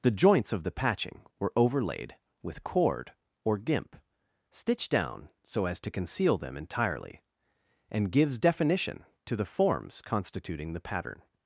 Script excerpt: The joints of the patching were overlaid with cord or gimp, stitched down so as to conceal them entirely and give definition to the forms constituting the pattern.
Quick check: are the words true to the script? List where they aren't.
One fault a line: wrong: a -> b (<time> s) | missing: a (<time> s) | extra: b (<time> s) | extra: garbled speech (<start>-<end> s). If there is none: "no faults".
wrong: give -> gives (8.1 s)